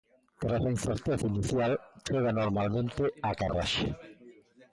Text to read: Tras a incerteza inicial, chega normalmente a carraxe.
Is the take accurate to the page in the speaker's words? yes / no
yes